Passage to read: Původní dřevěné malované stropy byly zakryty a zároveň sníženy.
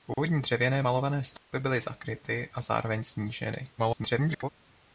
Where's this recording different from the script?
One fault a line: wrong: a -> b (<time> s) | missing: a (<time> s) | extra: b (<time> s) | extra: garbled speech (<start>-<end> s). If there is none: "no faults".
extra: garbled speech (3.8-4.5 s)